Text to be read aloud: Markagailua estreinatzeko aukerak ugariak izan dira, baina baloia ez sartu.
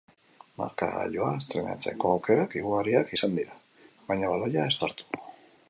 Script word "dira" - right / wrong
right